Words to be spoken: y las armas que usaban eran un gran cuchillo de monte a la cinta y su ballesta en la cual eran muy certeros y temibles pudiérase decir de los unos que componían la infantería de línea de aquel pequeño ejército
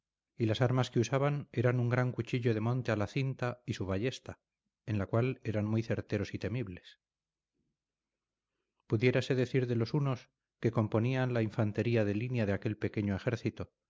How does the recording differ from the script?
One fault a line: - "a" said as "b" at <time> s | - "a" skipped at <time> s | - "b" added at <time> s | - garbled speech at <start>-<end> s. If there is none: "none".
none